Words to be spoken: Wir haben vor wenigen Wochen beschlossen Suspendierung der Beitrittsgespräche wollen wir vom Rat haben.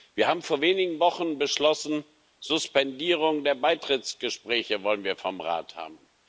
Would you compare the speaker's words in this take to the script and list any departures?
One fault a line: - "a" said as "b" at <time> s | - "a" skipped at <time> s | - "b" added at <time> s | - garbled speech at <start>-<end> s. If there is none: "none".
none